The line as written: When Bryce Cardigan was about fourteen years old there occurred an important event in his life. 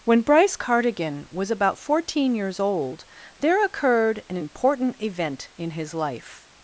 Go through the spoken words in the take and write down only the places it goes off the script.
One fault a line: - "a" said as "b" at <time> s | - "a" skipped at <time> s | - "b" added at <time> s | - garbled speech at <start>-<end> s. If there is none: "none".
none